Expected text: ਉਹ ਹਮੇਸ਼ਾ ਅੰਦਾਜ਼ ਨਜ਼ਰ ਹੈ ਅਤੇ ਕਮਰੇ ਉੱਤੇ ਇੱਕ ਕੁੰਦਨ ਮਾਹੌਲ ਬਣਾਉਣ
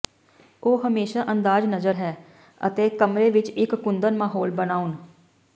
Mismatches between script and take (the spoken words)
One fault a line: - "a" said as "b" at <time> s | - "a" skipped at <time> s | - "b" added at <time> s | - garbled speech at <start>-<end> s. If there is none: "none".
- "ਉੱਤੇ" said as "ਵਿੱਚ" at 3.3 s